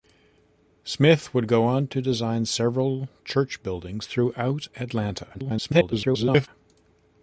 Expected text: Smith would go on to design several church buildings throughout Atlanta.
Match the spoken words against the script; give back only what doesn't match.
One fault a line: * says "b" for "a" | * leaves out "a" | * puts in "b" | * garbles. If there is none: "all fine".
* garbles